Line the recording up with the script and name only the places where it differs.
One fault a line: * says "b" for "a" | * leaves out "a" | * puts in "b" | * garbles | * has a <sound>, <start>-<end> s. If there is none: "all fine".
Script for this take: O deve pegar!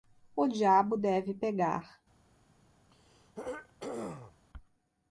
* puts in "diabo"
* has a throat clearing, 2.9-4.4 s